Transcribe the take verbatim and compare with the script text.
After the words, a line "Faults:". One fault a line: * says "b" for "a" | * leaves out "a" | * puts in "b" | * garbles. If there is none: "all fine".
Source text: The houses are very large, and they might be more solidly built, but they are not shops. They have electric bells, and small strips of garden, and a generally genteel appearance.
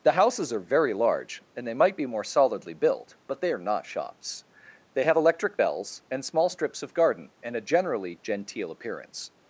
The houses are very large, and they might be more solidly built, but they are not shops. They have electric bells, and small strips of garden, and a generally genteel appearance.
Faults:
all fine